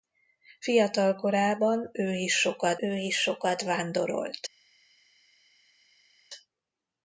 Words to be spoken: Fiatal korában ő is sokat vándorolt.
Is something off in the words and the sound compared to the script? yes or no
yes